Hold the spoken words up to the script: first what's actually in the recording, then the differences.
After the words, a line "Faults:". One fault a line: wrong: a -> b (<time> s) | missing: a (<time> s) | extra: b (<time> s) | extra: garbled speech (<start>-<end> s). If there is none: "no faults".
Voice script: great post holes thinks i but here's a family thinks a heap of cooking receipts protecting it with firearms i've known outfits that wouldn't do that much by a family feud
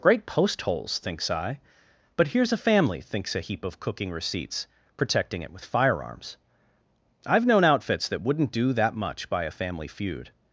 great post holes thinks i but here's a family thinks a heap of cooking receipts protecting it with firearms i've known outfits that wouldn't do that much by a family feud
Faults:
no faults